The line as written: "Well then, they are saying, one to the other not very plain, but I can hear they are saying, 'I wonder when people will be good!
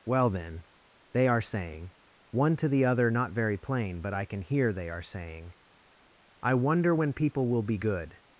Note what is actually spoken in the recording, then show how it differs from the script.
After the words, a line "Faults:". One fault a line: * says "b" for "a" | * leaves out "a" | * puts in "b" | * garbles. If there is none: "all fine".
"Well then, they are saying, one to the other not very plain, but I can hear they are saying, 'I wonder when people will be good!
Faults:
all fine